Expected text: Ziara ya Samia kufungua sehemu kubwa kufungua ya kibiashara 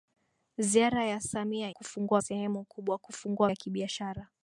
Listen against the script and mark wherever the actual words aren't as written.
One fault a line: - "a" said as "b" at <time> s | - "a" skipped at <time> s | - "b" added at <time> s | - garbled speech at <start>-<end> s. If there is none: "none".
none